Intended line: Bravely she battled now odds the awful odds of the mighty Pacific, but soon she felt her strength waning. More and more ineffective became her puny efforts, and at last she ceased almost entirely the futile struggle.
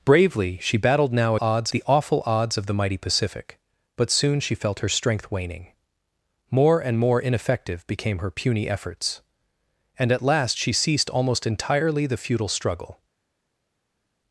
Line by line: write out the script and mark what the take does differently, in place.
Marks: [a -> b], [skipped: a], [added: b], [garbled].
Bravely she battled now odds the awful odds of the mighty Pacific, but soon she felt her strength waning. More and more ineffective became her puny efforts, and at last she ceased almost entirely the futile struggle.